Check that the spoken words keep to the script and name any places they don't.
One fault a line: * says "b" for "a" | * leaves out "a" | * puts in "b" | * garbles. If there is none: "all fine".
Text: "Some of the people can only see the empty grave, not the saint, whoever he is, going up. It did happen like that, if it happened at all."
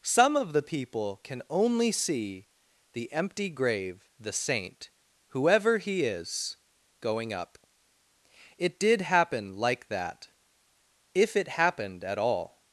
* leaves out "not"